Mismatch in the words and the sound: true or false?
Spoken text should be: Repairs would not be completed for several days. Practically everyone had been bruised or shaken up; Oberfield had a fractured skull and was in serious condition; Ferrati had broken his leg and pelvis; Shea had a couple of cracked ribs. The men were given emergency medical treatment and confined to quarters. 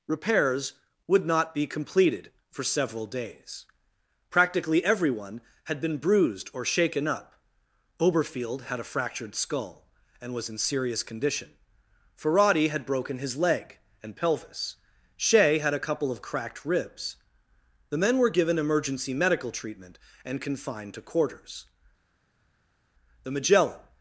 true